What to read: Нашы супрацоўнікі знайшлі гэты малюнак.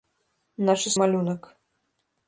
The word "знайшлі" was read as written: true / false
false